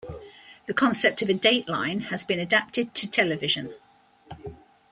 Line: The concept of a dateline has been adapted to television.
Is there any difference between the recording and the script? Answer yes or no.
no